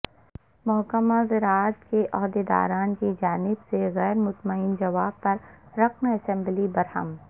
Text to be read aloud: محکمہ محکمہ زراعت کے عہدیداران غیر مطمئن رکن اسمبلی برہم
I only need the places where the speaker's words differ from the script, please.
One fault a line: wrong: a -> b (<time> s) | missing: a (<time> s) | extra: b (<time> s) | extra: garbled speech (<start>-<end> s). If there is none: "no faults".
missing: محکمہ (1.1 s)
extra: کی جانب سے (3.0 s)
extra: جواب پر (4.8 s)